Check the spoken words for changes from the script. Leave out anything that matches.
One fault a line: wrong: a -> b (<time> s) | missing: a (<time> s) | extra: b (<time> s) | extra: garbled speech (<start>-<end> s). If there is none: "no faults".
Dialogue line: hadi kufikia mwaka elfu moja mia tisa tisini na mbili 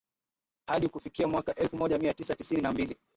no faults